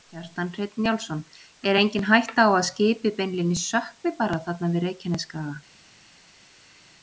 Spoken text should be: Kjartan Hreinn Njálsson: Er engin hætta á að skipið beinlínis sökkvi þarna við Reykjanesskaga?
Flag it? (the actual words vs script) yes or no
yes